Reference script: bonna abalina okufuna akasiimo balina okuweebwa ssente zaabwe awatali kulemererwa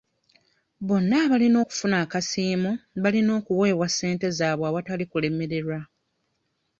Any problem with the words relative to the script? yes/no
no